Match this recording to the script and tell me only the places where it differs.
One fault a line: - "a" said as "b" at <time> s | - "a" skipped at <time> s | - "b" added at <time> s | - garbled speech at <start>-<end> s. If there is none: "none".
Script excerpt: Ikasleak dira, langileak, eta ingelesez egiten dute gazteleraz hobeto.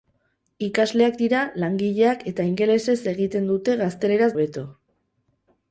none